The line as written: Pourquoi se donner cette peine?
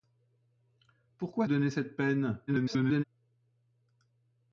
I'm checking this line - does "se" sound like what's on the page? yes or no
no